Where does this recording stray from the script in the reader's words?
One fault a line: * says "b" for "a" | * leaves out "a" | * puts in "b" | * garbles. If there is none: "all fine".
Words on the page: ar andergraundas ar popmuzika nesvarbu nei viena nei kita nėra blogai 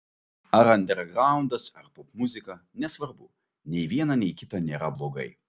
all fine